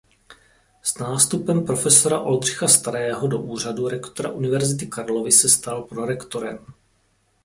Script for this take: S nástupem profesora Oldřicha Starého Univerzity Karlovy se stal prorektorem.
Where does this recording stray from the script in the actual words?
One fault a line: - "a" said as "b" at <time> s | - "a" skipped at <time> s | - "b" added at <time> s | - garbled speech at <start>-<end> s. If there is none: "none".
- "do úřadu rektora" added at 3.3 s